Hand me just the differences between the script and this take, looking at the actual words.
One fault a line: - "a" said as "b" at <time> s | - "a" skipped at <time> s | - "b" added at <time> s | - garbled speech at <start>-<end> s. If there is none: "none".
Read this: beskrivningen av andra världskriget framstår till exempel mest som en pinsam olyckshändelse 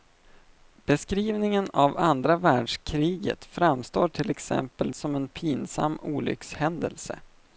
- "mest" skipped at 4.9 s